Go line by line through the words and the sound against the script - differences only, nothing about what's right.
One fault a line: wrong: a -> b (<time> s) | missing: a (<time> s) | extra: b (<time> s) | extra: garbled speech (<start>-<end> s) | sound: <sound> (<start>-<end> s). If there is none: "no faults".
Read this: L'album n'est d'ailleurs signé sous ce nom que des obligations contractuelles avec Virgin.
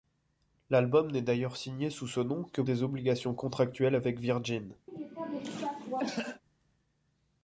sound: cough (4.9-6.4 s)